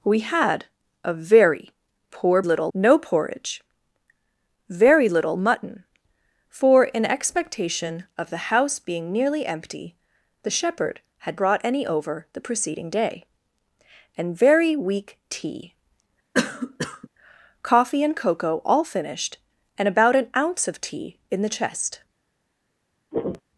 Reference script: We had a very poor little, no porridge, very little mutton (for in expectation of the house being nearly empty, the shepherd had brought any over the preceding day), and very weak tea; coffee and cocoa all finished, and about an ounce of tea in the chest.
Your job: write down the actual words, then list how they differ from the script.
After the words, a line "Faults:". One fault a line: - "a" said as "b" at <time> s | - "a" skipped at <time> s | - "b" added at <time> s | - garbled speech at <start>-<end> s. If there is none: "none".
We had a very poor little, no porridge, very little mutton (for in expectation of the house being nearly empty, the shepherd had brought any over the preceding day), and very weak tea; coffee and cocoa all finished, and about an ounce of tea in the chest.
Faults:
none